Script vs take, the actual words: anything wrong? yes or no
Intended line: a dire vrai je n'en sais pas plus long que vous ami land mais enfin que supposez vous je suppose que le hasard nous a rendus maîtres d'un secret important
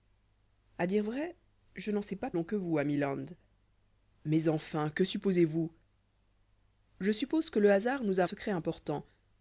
yes